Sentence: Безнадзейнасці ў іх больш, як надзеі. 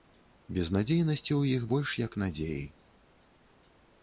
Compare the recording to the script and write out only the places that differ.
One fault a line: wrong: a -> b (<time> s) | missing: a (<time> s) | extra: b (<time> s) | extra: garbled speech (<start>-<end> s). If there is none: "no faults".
no faults